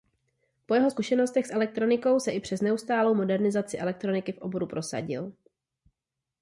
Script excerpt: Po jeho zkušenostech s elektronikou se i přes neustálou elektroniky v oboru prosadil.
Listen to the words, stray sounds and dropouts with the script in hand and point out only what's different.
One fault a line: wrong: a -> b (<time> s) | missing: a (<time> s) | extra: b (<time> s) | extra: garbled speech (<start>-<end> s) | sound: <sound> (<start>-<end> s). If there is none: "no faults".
extra: modernizaci (3.1 s)